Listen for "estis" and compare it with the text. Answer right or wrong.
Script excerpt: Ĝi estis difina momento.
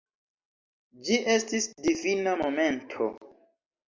right